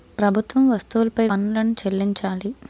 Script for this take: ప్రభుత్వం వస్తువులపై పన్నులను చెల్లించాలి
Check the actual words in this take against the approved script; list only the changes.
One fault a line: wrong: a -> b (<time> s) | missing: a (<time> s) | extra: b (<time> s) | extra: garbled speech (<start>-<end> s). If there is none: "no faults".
no faults